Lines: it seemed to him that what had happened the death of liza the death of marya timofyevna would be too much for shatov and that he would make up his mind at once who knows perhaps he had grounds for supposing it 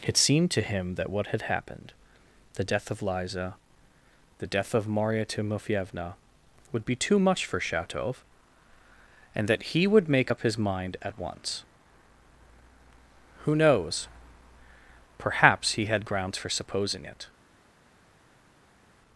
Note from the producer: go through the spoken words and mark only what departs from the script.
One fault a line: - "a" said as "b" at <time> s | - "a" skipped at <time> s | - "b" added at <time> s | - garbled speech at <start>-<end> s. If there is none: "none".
none